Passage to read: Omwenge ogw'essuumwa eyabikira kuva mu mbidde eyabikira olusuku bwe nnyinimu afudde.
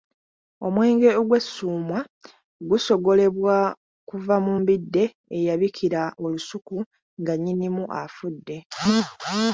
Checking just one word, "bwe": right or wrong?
wrong